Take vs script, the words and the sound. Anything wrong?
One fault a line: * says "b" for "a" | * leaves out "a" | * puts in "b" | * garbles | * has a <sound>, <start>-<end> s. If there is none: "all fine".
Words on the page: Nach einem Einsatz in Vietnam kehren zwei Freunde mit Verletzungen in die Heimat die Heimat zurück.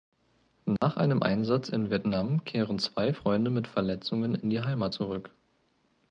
* has a dropout, 0.8-0.8 s
* leaves out "die Heimat"